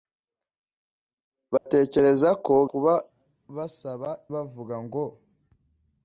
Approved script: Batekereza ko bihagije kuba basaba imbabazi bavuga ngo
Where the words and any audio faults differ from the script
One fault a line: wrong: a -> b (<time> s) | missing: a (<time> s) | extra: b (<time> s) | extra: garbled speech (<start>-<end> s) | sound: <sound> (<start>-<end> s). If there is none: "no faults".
sound: dropout (1.6-1.7 s)
missing: bihagije (2.5 s)
missing: imbabazi (4.1 s)